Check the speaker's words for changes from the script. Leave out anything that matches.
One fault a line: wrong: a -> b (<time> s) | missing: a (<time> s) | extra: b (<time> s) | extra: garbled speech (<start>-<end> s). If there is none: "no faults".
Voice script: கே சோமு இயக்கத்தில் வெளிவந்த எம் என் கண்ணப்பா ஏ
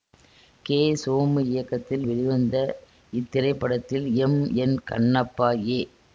extra: இத்திரைப்படத்தில் (3.1 s)